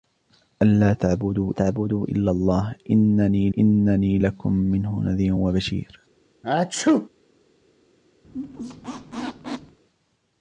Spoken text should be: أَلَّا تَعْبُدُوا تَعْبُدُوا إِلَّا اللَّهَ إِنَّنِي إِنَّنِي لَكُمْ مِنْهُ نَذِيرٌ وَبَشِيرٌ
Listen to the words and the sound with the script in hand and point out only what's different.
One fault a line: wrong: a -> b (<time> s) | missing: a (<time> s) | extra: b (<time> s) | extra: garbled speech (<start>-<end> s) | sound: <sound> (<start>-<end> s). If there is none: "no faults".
sound: sneeze (6.4-7.1 s)
sound: squeak (8.2-9.8 s)